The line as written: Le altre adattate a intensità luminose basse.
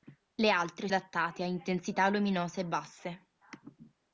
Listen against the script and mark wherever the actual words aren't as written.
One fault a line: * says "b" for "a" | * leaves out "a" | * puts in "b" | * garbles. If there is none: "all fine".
all fine